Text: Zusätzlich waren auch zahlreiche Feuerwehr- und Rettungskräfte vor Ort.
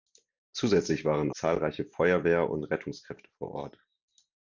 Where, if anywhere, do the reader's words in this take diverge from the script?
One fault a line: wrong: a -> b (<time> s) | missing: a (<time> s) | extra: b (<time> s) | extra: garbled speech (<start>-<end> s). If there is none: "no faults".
missing: auch (1.3 s)